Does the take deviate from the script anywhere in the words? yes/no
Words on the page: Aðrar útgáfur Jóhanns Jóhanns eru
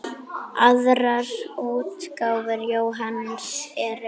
yes